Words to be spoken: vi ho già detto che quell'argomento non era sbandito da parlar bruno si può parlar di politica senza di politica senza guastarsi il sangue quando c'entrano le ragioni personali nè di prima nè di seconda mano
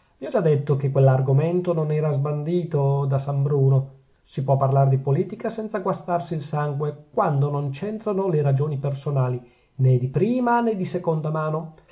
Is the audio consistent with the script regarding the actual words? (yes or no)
no